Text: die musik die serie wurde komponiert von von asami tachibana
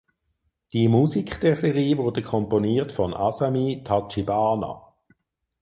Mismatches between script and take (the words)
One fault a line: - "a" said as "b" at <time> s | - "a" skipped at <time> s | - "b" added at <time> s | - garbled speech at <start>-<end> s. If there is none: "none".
- "die" said as "der" at 1.4 s
- "von" skipped at 3.1 s